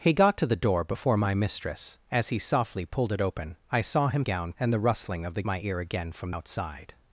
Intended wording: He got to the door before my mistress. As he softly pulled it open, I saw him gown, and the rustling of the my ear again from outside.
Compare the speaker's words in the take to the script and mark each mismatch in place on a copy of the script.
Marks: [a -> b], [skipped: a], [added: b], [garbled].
He got to the door before my mistress. As he softly pulled it open, I saw him gown, and the rustling of the my ear again from outside.